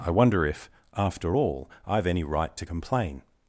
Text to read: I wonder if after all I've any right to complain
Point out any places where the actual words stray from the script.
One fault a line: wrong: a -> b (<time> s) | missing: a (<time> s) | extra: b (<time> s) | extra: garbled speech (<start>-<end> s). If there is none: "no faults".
no faults